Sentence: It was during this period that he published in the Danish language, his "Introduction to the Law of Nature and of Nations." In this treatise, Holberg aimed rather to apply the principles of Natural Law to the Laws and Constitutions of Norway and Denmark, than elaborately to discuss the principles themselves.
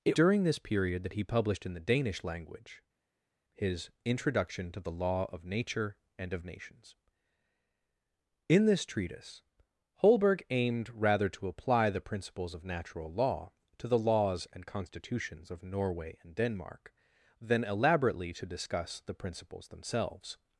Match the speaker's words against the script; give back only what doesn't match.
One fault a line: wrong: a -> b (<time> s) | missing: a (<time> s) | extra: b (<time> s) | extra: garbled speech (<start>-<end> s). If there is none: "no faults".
missing: was (0.2 s)